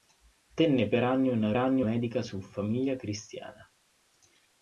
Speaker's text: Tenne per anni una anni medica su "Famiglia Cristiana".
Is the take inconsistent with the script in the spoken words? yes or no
no